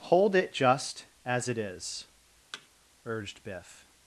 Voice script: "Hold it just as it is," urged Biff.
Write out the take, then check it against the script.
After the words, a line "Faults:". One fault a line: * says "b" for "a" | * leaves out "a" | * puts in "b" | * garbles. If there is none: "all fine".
"Hold it just as it is," urged Biff.
Faults:
all fine